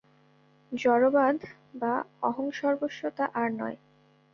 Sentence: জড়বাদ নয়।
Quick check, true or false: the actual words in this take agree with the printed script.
false